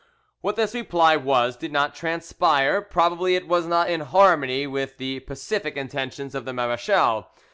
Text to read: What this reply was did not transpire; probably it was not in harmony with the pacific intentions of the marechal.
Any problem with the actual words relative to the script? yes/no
no